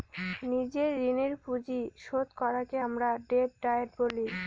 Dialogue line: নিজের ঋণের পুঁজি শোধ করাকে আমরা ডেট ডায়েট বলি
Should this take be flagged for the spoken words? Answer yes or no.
no